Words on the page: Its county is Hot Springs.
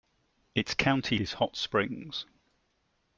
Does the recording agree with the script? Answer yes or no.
yes